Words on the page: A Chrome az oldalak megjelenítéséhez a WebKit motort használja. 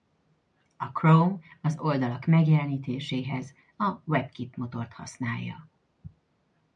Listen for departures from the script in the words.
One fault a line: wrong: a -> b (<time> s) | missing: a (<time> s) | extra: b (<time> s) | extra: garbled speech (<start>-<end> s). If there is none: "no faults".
no faults